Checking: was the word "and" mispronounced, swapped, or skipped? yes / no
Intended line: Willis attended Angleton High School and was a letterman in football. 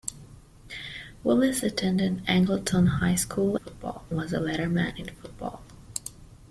yes